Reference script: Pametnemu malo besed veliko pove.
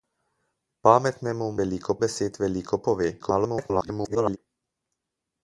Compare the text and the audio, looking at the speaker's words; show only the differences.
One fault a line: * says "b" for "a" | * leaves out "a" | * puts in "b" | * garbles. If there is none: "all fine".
* says "veliko" for "malo"
* garbles